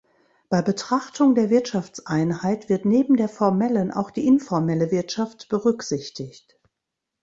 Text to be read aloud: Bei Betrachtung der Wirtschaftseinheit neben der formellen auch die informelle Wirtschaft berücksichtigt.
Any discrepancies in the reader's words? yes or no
yes